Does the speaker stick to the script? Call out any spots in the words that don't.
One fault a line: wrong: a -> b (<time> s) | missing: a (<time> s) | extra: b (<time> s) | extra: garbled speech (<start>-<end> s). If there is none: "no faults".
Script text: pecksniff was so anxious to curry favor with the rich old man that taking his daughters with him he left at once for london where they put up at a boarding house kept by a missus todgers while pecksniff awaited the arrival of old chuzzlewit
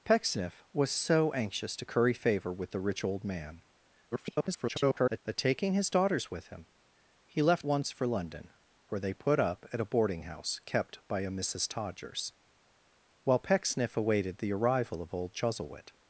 extra: garbled speech (4.1-5.2 s)
missing: at (7.7 s)